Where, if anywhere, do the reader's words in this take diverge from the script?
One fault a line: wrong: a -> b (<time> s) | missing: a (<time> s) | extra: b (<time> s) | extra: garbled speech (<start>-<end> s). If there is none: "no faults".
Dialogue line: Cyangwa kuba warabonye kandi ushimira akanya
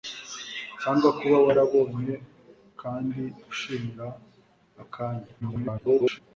extra: garbled speech (5.4-6.2 s)